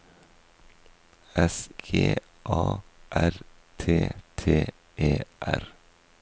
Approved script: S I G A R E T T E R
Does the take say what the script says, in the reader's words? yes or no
no